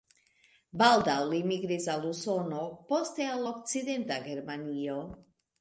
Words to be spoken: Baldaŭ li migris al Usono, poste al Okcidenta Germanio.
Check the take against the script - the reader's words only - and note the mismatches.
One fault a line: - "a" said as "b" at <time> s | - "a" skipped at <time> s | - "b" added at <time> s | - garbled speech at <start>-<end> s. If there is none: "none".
none